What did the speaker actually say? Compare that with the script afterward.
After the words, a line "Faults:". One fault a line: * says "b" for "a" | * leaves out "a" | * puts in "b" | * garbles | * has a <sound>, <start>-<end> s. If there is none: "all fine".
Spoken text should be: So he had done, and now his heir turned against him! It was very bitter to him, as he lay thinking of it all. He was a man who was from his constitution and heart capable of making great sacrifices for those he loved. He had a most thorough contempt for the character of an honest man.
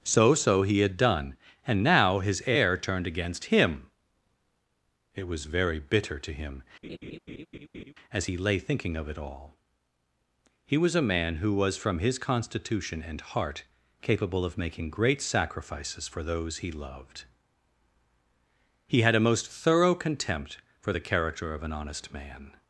So so he had done, and now his heir turned against him! It was very bitter to him, as he lay thinking of it all. He was a man who was from his constitution and heart capable of making great sacrifices for those he loved. He had a most thorough contempt for the character of an honest man.
Faults:
* puts in "so"
* has a laugh, 6.8-7.9 s